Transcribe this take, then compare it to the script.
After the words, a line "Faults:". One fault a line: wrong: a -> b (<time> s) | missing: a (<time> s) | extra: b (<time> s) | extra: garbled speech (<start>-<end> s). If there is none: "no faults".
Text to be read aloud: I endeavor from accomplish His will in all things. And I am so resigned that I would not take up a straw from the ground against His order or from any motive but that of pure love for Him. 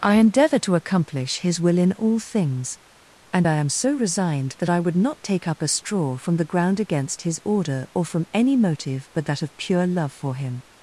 I endeavor to accomplish His will in all things. And I am so resigned that I would not take up a straw from the ground against His order or from any motive but that of pure love for Him.
Faults:
wrong: from -> to (0.6 s)